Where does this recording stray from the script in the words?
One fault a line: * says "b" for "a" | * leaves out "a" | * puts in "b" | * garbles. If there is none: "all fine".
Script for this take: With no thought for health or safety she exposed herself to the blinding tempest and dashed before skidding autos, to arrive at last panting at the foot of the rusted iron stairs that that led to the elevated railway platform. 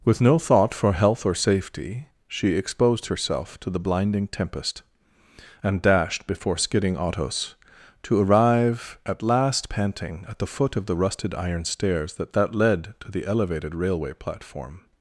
all fine